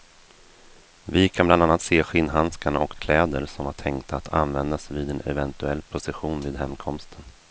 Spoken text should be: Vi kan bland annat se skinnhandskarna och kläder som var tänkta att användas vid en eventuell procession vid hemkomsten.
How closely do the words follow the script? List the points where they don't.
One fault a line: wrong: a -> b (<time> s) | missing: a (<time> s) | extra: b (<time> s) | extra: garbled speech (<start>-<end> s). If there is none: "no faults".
no faults